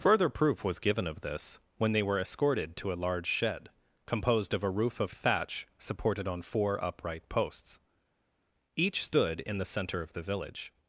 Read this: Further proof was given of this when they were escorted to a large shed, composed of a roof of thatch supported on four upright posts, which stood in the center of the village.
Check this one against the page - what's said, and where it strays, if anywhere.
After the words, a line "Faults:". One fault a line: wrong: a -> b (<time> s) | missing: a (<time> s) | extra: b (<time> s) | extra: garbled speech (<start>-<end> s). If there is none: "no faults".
Further proof was given of this when they were escorted to a large shed, composed of a roof of thatch supported on four upright posts, each stood in the center of the village.
Faults:
wrong: which -> each (8.8 s)